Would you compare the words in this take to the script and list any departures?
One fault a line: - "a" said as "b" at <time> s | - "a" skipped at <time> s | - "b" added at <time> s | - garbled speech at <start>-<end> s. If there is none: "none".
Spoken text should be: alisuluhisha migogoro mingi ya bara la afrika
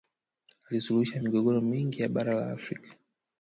none